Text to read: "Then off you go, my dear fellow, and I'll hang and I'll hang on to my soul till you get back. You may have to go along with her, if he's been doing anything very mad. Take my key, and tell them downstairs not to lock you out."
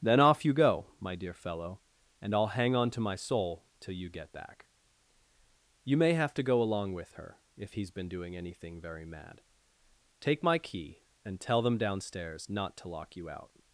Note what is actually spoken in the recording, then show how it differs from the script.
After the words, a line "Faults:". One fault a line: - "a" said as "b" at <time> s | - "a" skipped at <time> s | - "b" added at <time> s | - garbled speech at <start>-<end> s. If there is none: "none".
"Then off you go, my dear fellow, and I'll hang on to my soul till you get back. You may have to go along with her, if he's been doing anything very mad. Take my key, and tell them downstairs not to lock you out."
Faults:
- "and I'll hang" skipped at 2.8 s